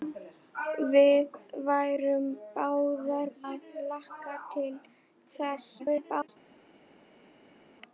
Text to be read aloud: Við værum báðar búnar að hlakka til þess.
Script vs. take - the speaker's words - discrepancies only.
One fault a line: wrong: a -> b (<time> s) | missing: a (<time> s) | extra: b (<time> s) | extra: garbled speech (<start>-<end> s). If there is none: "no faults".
missing: búnar (3.3 s)
extra: garbled speech (5.8-6.3 s)